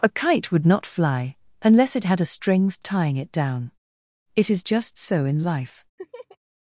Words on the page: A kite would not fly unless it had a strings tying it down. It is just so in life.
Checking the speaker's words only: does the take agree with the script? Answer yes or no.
yes